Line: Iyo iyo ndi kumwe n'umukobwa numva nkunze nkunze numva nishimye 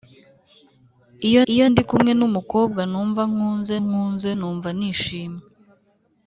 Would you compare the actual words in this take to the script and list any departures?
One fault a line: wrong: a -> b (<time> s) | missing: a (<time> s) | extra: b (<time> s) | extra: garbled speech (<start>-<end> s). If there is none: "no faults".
no faults